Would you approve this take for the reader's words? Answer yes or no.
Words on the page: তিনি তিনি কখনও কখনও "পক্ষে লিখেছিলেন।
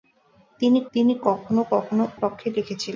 yes